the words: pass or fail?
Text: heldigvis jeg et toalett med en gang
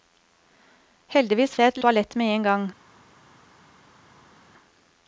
pass